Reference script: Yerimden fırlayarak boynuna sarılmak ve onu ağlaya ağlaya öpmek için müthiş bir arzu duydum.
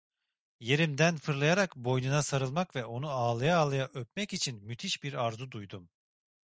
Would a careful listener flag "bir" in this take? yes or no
no